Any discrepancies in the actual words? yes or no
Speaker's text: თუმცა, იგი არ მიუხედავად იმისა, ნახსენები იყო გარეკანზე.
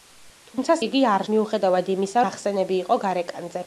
no